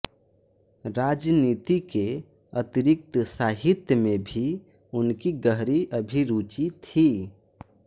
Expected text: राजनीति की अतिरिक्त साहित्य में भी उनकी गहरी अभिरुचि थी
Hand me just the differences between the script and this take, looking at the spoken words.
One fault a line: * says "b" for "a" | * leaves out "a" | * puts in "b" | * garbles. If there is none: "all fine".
* says "के" for "की"